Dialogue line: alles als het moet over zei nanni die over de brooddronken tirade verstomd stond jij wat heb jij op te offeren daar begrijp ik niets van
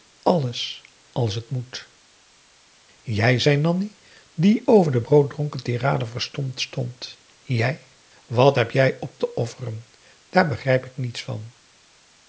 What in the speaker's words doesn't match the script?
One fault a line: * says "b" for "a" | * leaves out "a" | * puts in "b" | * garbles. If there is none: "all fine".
* says "jij" for "over"